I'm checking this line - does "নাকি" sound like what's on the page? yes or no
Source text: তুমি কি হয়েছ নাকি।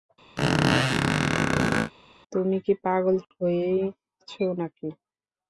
yes